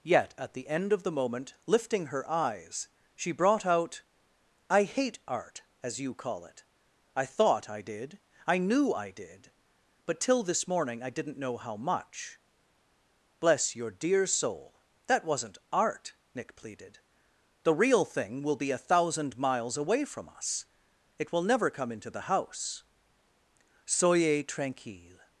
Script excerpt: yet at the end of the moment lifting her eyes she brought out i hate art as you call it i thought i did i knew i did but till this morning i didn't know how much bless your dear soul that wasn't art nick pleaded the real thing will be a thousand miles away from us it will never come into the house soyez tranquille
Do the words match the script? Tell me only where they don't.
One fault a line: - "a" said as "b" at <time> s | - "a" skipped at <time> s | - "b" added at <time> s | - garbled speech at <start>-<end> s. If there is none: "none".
none